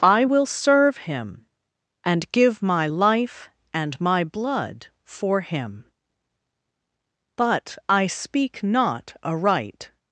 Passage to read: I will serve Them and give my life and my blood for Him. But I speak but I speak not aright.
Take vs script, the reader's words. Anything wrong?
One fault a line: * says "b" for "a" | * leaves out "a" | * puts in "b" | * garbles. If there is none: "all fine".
* says "Him" for "Them"
* leaves out "but I speak"